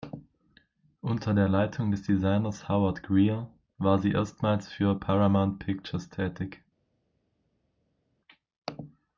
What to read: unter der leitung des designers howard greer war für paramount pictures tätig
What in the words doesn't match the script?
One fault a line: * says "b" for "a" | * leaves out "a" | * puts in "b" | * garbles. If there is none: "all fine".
* puts in "sie erstmals"